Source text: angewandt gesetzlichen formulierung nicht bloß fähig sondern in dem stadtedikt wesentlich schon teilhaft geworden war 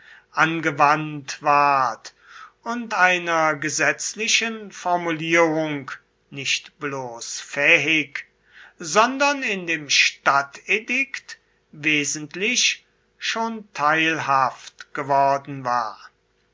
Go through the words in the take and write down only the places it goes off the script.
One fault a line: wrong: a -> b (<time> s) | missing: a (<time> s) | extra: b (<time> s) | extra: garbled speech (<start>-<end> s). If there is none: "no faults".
extra: ward und einer (1.4 s)